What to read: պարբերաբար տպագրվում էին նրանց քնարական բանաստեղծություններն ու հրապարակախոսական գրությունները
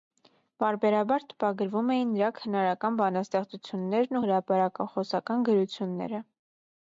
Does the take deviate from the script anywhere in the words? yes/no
yes